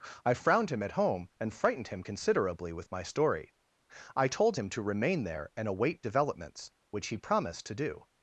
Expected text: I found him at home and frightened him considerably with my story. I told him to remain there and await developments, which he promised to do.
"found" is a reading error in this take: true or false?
true